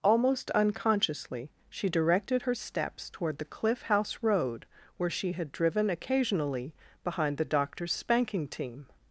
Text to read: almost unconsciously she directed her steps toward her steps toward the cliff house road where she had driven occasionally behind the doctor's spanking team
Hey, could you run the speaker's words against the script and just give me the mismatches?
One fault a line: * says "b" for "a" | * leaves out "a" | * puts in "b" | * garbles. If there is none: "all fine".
* leaves out "her steps toward"